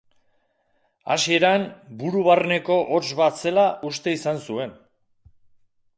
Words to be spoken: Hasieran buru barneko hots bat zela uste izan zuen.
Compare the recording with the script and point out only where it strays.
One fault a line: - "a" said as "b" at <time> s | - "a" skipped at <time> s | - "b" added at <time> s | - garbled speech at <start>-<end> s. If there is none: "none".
none